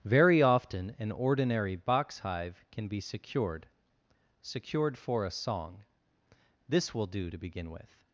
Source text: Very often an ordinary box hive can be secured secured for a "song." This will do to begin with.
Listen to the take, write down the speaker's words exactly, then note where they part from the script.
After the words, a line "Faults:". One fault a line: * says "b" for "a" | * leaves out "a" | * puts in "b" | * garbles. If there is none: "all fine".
Very often an ordinary box hive can be secured secured for a "song." This will do to begin with.
Faults:
all fine